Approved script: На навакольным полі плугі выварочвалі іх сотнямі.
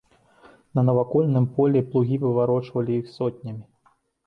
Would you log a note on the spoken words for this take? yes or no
no